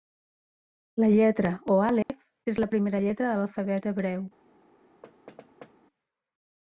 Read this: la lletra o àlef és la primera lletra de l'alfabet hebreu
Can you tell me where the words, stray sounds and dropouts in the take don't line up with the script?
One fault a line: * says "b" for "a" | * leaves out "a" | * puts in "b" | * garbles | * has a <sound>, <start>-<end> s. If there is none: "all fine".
* has a dropout, 2.0-2.1 s
* has a thud, 5.0-5.7 s